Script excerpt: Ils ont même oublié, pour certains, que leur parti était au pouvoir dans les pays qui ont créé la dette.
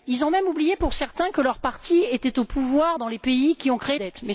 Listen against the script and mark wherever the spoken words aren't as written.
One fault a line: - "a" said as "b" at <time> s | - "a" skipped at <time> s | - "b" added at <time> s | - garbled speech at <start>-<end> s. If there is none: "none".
- "la" skipped at 4.0 s